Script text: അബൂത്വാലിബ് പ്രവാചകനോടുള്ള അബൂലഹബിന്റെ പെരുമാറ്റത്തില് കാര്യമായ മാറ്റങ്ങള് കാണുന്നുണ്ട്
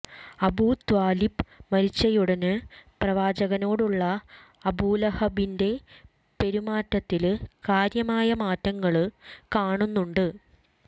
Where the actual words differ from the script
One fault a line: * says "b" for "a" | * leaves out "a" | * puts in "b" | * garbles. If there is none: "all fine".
* puts in "മരിച്ചയുടന്"